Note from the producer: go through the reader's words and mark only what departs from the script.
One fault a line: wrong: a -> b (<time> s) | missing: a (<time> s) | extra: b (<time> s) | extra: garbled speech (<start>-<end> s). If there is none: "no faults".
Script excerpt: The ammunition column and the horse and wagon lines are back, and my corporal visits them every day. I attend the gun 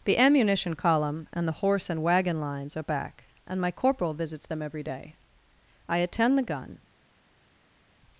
no faults